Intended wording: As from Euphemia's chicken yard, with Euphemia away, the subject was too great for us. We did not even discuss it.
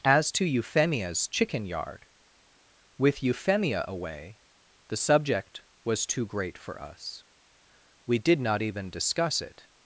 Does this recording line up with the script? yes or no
no